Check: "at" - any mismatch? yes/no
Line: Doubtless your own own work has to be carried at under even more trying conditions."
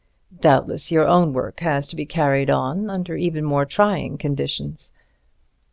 yes